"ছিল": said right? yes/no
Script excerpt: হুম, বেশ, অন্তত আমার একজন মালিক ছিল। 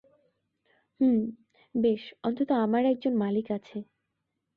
no